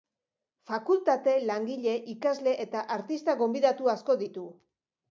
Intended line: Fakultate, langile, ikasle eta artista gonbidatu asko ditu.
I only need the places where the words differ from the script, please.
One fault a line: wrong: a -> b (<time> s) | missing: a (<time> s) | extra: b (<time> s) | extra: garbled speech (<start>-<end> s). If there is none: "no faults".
no faults